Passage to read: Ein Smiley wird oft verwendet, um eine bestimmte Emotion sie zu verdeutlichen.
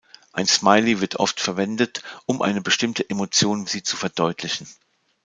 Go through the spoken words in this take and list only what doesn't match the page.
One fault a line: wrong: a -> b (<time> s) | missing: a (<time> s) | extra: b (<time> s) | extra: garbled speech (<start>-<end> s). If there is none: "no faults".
no faults